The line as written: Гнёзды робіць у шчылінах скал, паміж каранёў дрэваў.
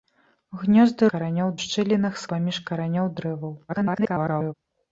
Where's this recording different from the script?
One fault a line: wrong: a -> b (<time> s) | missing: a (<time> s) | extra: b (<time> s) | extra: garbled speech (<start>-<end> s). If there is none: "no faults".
wrong: робіць -> каранёў (1.1 s)
missing: скал (2.2 s)
extra: garbled speech (3.7-4.5 s)